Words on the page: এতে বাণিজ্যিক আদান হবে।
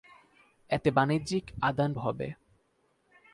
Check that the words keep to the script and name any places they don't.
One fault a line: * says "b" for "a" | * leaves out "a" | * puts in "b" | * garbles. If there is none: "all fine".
all fine